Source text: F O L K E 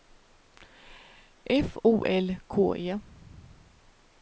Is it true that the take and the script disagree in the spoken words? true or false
false